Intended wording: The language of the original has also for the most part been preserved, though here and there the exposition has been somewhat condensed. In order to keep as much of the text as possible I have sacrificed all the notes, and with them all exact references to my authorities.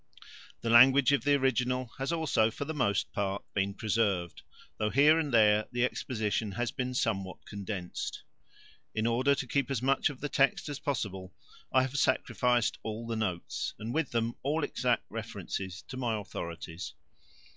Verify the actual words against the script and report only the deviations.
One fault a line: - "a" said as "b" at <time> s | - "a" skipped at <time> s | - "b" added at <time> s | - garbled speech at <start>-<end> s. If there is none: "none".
none